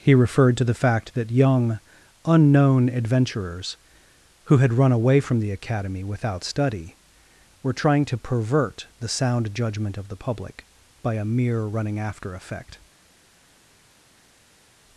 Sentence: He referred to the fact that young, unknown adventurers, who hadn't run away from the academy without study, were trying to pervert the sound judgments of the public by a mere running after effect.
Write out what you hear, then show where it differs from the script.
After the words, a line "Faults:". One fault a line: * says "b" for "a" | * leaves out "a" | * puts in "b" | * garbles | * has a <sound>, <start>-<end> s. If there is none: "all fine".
He referred to the fact that young, unknown adventurers, who had run away from the academy without study, were trying to pervert the sound judgment of the public by a mere running after effect.
Faults:
* says "had" for "hadn't"
* says "judgment" for "judgments"